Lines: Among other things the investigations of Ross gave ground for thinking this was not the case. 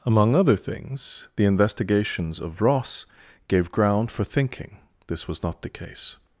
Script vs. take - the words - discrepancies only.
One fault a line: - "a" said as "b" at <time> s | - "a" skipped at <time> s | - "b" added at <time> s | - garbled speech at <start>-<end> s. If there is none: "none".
none